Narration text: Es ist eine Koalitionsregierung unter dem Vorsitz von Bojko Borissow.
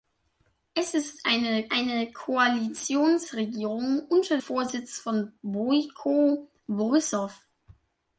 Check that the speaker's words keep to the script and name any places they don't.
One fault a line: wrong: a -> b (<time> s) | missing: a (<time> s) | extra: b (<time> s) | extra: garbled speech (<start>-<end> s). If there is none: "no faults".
extra: eine (1.7 s)
missing: dem (4.4 s)